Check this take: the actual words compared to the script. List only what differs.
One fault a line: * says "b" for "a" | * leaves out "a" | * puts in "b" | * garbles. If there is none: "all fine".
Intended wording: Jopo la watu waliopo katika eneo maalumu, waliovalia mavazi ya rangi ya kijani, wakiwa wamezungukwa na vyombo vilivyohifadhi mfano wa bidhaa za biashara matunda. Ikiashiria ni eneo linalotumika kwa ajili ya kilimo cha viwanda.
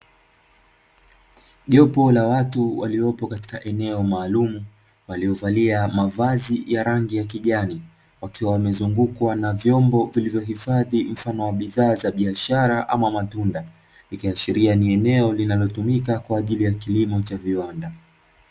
* puts in "ama"